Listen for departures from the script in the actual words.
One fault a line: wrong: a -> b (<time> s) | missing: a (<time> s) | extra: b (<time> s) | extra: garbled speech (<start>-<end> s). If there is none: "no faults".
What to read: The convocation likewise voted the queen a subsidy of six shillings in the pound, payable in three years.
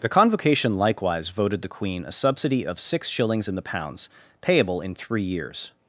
wrong: pound -> pounds (3.6 s)